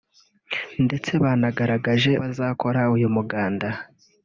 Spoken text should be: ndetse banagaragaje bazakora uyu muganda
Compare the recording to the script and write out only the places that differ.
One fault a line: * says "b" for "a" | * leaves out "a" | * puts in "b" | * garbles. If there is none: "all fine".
all fine